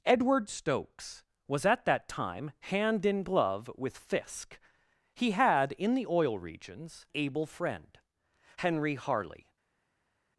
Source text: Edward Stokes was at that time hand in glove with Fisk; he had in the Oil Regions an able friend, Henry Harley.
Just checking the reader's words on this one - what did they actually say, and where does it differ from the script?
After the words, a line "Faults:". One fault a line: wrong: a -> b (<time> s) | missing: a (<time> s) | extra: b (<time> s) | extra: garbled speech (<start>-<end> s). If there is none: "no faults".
Edward Stokes was at that time hand in glove with Fisk; he had in the Oil Regions able friend, Henry Harley.
Faults:
missing: an (7.0 s)